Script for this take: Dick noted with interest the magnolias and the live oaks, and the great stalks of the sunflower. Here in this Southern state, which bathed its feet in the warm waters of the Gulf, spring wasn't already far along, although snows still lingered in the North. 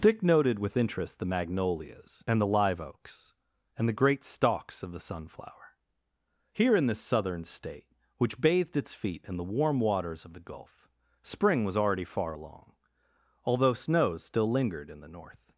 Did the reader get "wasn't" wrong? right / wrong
wrong